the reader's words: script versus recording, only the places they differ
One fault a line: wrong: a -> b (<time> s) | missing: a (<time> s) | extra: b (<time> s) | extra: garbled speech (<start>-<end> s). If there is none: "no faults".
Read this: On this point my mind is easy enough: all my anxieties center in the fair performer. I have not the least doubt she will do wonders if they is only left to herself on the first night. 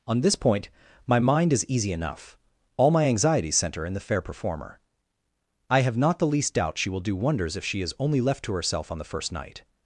wrong: they -> she (7.6 s)